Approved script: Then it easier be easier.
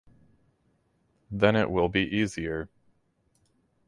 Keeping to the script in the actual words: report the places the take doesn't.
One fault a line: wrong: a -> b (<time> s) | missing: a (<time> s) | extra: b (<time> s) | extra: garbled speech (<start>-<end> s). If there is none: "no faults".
wrong: easier -> will (1.7 s)